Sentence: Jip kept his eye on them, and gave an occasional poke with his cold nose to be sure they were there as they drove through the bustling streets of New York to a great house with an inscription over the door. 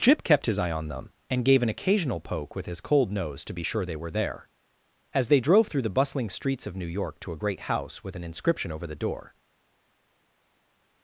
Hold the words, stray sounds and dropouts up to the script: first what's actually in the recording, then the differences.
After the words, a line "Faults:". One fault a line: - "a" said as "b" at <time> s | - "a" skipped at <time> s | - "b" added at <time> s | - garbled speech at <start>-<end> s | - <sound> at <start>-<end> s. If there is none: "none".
Jip kept his eye on them, and gave an occasional poke with his cold nose to be sure they were there as they drove through the bustling streets of New York to a great house with an inscription over the door.
Faults:
none